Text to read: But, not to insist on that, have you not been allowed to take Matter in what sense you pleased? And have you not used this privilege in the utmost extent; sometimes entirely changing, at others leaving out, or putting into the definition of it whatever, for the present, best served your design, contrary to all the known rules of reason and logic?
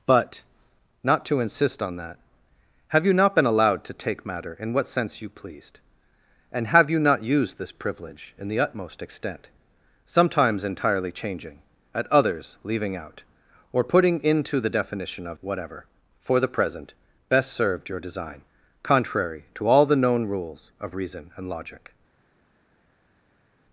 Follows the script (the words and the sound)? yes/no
no